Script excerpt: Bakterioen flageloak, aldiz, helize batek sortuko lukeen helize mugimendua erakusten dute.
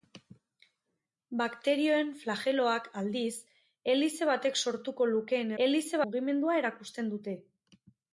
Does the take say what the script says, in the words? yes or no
yes